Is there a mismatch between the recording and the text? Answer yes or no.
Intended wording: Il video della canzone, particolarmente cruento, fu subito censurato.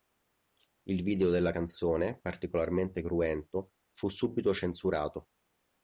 no